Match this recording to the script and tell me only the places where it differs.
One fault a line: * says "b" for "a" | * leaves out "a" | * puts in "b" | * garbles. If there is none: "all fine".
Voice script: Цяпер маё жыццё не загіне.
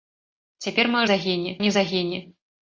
* says "загіне" for "жыццё"